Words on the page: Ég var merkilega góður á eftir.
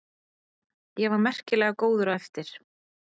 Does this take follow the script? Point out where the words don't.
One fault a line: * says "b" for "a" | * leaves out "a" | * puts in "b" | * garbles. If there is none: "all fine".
all fine